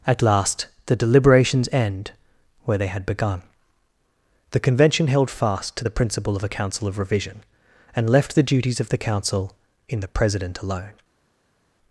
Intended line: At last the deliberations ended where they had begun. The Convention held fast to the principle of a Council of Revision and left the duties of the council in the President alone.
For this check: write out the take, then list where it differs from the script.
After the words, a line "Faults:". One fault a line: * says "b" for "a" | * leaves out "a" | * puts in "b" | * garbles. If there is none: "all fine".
At last the deliberations end where they had begun. The Convention held fast to the principle of a Council of Revision and left the duties of the council in the President alone.
Faults:
* says "end" for "ended"